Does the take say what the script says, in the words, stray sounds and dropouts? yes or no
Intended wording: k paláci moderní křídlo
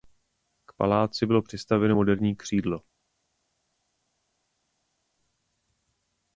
no